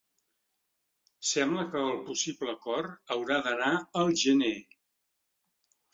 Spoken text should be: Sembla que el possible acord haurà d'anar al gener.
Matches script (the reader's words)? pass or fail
pass